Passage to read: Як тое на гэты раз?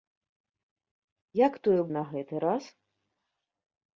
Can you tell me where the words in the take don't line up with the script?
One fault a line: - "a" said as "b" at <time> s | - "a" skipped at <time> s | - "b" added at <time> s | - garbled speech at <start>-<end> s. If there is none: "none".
none